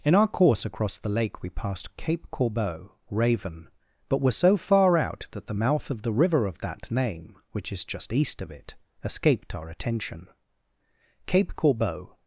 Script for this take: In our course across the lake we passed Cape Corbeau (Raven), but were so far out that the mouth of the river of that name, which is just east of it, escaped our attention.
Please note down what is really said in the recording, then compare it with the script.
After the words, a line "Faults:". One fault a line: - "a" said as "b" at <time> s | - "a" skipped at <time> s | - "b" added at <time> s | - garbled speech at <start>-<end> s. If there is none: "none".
In our course across the lake we passed Cape Corbeau (Raven), but were so far out that the mouth of the river of that name, which is just east of it, escaped our attention. Cape Corbeau
Faults:
- "Cape Corbeau" added at 11.3 s